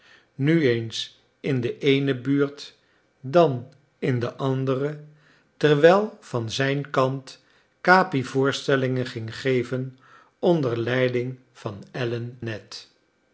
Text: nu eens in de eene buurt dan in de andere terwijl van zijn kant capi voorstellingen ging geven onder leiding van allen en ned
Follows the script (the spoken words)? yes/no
no